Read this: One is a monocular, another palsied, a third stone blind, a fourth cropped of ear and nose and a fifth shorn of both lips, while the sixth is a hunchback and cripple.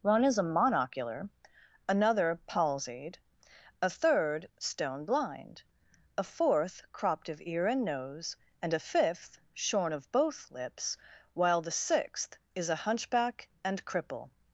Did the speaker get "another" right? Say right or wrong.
right